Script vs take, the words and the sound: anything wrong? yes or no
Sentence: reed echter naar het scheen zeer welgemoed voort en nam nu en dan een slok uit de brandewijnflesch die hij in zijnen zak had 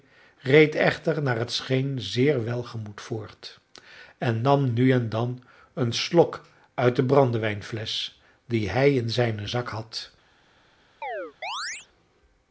yes